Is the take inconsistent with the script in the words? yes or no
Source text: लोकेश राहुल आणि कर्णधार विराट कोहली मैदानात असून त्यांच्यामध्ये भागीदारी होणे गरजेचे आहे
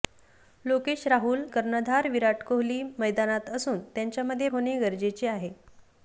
yes